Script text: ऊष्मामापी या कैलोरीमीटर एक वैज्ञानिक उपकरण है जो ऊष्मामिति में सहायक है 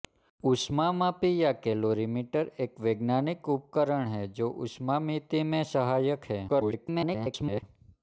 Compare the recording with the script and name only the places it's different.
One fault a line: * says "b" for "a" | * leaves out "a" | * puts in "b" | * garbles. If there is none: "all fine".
* garbles